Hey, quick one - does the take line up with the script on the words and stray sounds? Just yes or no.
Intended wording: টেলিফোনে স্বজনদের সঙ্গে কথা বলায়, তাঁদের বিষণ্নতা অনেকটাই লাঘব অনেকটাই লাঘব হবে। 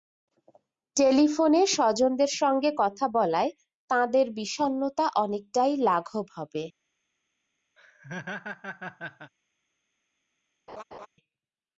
no